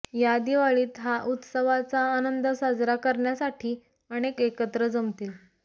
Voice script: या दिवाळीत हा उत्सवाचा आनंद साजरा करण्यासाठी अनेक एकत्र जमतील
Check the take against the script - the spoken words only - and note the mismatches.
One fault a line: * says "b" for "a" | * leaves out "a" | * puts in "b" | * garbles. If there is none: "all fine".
all fine